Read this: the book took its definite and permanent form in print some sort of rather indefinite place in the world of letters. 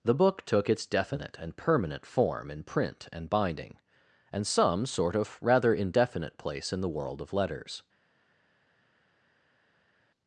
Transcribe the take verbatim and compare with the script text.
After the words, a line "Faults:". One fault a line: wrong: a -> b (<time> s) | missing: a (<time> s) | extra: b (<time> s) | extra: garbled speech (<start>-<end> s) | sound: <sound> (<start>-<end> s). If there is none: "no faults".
the book took its definite and permanent form in print and binding, and some sort of rather indefinite place in the world of letters.
Faults:
extra: and binding and (3.1 s)